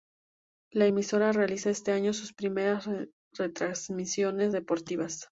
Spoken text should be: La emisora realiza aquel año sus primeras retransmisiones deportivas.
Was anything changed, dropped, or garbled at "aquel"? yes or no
yes